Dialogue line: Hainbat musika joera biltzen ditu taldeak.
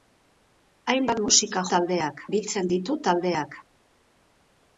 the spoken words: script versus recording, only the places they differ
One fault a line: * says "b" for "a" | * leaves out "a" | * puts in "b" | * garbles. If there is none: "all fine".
* says "taldeak" for "joera"